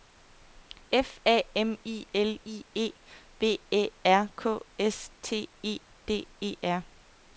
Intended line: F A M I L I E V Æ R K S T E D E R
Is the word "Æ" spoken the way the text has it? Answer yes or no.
yes